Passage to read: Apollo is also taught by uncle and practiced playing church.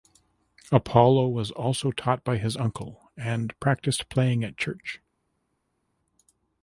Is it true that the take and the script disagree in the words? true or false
true